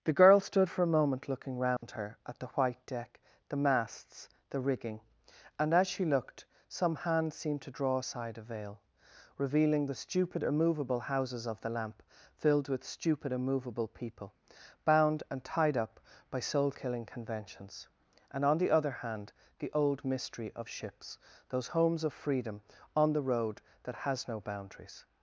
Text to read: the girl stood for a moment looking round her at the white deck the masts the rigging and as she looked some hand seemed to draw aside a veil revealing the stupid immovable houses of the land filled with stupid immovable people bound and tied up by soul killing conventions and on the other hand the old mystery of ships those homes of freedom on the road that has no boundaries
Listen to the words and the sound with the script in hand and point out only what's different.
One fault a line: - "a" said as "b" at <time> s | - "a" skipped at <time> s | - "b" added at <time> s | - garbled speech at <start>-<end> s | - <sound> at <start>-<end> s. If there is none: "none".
- dropout at 1.8-1.8 s
- "land" said as "lamp" at 11.7 s